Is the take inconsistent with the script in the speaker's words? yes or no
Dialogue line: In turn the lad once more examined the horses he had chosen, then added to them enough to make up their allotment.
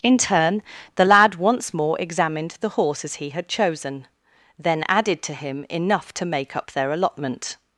yes